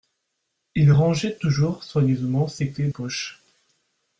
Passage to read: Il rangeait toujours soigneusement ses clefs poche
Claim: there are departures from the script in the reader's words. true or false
false